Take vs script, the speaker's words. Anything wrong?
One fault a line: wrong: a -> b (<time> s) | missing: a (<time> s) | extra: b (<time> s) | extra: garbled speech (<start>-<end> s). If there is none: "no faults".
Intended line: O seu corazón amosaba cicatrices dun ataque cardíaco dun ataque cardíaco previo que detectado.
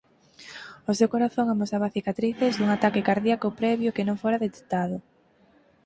wrong: dun ataque cardíaco previo que -> previo que non fora (3.6 s)